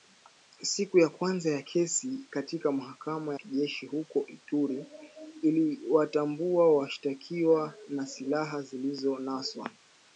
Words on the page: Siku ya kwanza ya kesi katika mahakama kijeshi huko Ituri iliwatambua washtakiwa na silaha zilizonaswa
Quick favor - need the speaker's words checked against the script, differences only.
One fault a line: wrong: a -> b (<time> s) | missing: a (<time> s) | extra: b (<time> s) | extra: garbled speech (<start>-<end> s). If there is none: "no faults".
no faults